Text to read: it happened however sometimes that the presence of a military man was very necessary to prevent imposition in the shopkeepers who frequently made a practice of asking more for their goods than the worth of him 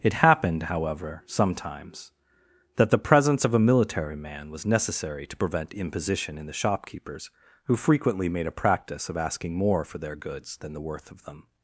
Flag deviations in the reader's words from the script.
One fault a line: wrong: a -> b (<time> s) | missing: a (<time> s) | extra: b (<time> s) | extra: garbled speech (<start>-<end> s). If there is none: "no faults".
missing: very (4.6 s)
wrong: him -> them (11.2 s)